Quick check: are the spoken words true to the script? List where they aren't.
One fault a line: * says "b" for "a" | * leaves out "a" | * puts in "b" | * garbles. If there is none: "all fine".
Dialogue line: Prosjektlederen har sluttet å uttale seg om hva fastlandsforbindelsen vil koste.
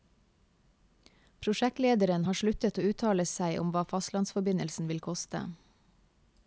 all fine